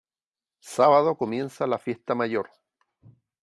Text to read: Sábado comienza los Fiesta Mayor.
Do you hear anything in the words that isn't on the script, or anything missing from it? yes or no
yes